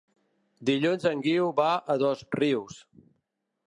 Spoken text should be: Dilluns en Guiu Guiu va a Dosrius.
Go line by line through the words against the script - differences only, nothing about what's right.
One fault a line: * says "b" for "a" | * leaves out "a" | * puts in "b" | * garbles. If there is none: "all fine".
* leaves out "Guiu"